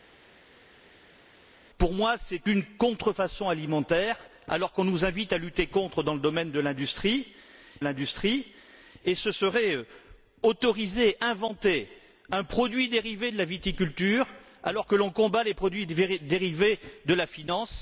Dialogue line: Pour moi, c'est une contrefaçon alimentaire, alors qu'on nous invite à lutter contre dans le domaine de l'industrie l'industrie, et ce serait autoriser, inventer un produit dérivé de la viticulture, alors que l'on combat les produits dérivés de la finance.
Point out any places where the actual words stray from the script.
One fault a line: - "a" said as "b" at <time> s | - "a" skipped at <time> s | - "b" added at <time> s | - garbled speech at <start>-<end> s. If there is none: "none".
none